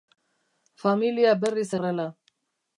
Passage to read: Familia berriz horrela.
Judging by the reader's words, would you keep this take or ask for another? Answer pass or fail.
pass